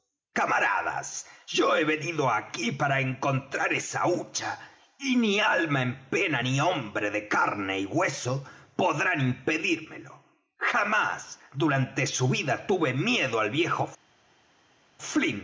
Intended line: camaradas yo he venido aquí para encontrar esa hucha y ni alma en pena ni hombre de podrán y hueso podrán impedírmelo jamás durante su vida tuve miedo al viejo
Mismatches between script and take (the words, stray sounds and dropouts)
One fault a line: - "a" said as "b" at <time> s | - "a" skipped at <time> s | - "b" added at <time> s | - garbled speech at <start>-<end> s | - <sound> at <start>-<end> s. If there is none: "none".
- "podrán" said as "carne" at 7.3 s